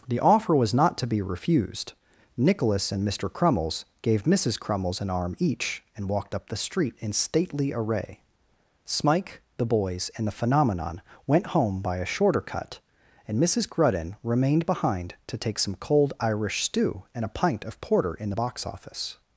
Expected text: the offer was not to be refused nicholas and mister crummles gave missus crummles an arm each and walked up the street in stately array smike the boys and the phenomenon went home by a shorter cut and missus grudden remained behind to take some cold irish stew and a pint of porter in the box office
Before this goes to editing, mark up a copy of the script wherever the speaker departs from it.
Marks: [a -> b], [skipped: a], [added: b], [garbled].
the offer was not to be refused nicholas and mister crummles gave missus crummles an arm each and walked up the street in stately array smike the boys and the phenomenon went home by a shorter cut and missus grudden remained behind to take some cold irish stew and a pint of porter in the box office